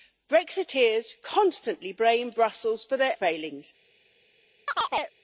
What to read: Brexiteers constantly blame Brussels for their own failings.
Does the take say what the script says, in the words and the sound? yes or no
no